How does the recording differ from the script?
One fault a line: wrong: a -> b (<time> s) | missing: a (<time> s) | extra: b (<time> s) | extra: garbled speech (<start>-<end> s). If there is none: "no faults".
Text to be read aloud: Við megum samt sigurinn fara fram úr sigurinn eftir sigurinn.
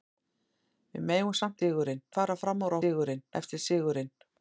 no faults